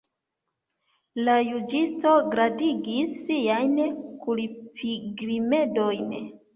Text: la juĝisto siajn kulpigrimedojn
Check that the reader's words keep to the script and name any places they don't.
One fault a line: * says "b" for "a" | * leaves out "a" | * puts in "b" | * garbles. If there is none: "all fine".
* puts in "gradigis"